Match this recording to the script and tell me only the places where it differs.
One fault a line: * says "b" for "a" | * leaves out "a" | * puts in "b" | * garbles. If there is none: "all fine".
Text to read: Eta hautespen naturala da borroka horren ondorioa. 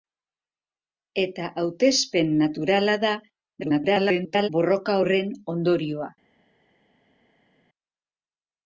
* garbles